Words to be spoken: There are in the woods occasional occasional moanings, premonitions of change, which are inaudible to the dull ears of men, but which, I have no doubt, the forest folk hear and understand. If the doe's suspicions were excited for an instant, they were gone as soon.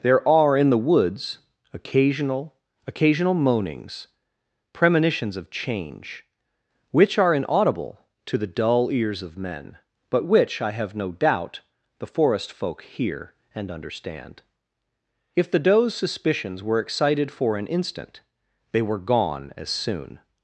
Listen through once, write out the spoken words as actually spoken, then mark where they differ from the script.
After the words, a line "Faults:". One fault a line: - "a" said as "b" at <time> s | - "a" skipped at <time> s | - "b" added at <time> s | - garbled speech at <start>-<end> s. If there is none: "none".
There are in the woods occasional occasional moanings, premonitions of change, which are inaudible to the dull ears of men, but which, I have no doubt, the forest folk hear and understand. If the doe's suspicions were excited for an instant, they were gone as soon.
Faults:
none